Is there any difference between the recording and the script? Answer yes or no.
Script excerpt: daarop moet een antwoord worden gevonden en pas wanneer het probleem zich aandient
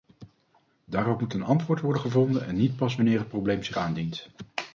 yes